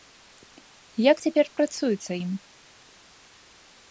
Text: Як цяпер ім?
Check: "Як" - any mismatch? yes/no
no